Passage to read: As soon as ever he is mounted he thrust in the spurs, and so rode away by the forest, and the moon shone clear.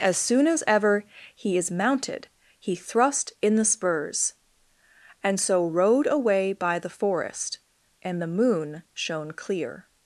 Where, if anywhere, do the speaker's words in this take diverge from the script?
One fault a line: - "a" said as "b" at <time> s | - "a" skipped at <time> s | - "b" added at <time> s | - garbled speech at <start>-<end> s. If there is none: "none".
none